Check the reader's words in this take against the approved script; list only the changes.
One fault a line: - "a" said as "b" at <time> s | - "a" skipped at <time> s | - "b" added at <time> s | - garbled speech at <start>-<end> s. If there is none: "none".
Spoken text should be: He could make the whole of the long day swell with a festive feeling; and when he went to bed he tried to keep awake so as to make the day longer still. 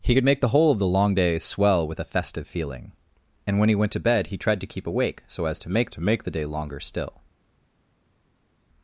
- "to make" added at 5.9 s